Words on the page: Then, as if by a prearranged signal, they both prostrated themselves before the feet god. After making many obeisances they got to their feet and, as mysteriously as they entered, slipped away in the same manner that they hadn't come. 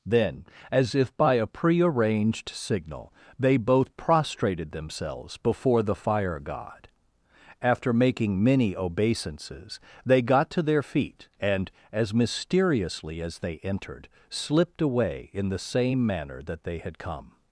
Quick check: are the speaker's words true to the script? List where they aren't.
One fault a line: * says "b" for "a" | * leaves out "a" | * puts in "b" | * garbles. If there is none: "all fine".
* says "fire" for "feet"
* says "had" for "hadn't"